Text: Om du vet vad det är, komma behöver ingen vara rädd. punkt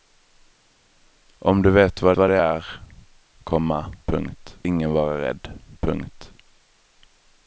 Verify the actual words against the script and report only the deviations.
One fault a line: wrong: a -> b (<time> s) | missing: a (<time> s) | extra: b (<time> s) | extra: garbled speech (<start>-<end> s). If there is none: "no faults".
extra: vad (2.2 s)
wrong: behöver -> punkt (4.1 s)